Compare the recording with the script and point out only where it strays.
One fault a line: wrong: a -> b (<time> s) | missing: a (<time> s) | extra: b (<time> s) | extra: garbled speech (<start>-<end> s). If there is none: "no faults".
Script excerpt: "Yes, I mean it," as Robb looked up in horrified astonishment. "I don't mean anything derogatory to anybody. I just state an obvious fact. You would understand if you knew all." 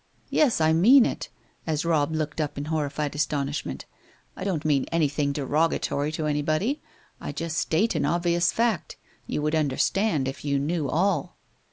no faults